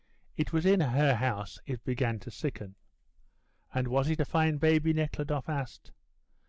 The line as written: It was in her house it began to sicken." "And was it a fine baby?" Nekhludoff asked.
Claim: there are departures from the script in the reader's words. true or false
false